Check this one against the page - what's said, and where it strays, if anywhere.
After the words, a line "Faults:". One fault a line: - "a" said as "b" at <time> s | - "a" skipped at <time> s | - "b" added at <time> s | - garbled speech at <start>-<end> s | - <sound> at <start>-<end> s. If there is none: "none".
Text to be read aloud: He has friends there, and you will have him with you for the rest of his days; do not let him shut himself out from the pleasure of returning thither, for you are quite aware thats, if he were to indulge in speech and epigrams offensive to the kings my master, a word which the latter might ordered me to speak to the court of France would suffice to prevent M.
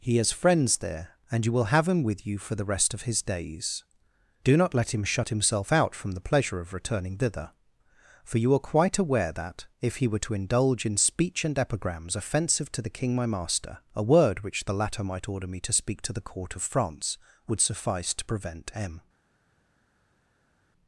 He has friends there, and you will have him with you for the rest of his days; do not let him shut himself out from the pleasure of returning thither, for you are quite aware that, if he were to indulge in speech and epigrams offensive to the king my master, a word which the latter might order me to speak to the court of France would suffice to prevent M.
Faults:
- "thats" said as "that" at 9.3 s
- "kings" said as "king" at 12.9 s
- "ordered" said as "order" at 15.3 s